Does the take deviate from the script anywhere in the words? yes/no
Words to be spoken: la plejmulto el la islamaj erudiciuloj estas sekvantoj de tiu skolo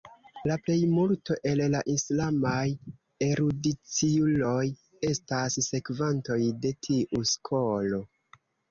no